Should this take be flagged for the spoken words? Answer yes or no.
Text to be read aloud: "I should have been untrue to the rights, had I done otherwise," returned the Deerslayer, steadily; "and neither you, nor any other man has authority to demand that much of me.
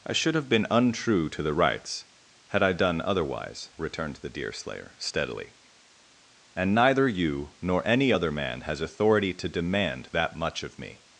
no